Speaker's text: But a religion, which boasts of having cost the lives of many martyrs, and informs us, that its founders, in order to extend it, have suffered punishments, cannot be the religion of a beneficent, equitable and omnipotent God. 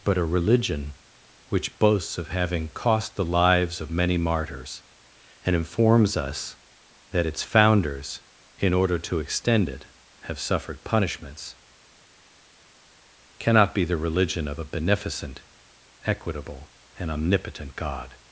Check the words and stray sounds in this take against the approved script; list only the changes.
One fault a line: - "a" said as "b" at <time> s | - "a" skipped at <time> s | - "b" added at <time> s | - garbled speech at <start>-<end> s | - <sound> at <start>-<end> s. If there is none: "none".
none